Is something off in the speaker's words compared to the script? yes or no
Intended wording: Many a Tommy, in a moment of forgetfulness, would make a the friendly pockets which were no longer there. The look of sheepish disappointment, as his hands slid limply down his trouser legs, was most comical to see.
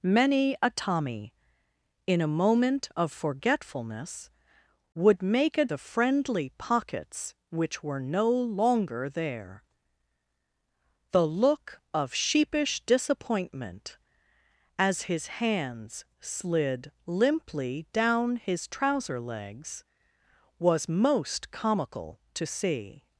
no